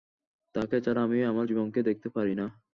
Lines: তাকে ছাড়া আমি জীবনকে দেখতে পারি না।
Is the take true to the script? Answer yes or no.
no